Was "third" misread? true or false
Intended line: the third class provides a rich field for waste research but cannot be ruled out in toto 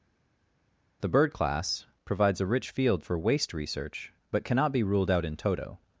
true